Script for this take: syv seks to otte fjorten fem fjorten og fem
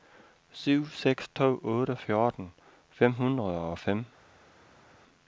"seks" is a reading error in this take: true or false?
false